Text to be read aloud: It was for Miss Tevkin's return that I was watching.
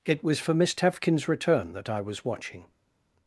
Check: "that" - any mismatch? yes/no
no